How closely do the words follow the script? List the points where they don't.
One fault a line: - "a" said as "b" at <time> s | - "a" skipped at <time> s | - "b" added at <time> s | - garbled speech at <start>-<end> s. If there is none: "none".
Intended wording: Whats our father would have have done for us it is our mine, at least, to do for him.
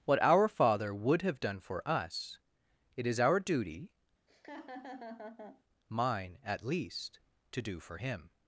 - "Whats" said as "What" at 0.1 s
- "have" skipped at 1.4 s
- "duty" added at 3.4 s